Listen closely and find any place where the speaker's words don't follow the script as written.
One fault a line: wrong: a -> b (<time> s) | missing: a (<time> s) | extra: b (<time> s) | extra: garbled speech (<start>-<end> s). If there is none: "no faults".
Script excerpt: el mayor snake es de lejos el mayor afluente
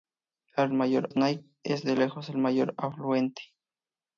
no faults